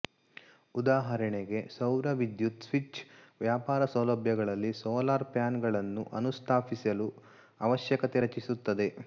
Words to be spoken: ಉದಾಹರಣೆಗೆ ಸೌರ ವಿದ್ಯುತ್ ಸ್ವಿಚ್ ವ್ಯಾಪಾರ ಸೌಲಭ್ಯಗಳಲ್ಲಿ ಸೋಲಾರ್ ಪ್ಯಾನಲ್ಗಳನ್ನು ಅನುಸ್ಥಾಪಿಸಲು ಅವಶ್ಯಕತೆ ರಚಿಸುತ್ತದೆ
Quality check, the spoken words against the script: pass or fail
pass